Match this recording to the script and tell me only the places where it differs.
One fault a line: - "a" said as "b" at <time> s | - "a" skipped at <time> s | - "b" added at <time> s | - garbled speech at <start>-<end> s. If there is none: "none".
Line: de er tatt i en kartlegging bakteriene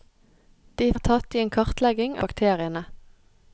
none